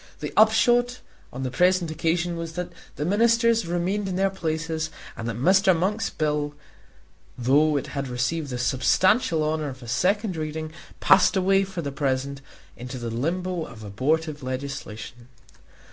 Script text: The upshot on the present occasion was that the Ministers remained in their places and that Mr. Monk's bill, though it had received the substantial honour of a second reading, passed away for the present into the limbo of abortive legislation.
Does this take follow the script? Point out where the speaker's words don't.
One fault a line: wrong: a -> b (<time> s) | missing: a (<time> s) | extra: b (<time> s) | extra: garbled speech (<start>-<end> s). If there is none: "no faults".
no faults